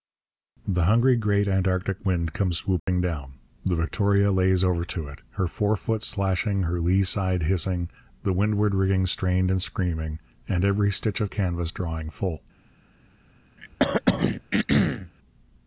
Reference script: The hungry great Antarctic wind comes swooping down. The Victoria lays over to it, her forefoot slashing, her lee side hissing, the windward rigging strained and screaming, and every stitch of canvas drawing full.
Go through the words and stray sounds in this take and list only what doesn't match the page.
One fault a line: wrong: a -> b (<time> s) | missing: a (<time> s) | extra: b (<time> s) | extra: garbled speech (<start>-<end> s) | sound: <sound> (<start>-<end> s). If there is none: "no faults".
sound: dropout (2.8-2.9 s)
sound: throat clearing (13.6-15.1 s)